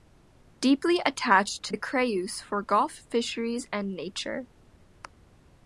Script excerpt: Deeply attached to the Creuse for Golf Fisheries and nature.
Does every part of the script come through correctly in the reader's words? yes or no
yes